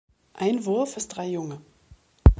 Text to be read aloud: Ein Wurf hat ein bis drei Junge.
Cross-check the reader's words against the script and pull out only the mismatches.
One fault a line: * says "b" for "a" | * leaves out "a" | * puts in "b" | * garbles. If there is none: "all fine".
* leaves out "hat ein"